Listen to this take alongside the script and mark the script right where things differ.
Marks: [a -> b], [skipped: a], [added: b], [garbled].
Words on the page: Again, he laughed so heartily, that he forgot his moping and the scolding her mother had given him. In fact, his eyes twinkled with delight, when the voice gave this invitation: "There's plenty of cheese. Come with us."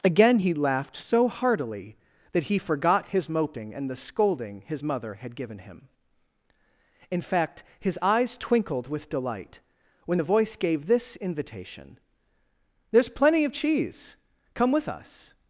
Again, he laughed so heartily, that he forgot his moping and the scolding [her -> his] mother had given him. In fact, his eyes twinkled with delight, when the voice gave this invitation: "There's plenty of cheese. Come with us."